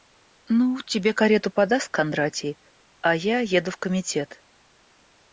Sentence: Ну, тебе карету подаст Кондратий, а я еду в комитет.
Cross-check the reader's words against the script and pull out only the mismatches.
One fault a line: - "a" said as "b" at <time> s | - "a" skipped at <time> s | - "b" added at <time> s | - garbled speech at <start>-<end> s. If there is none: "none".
none